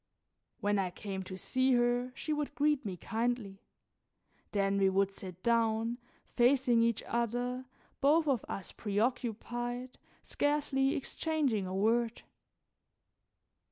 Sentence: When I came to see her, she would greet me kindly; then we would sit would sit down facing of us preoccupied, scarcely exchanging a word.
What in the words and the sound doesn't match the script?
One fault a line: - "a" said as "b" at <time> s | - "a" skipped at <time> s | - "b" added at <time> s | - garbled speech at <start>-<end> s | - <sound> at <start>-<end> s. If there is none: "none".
- "would sit down facing" said as "down facing each other both" at 5.4 s